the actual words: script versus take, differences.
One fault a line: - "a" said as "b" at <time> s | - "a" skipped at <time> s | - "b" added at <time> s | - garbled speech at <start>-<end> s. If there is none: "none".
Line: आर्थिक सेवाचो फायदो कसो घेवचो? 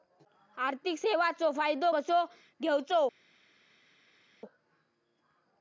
none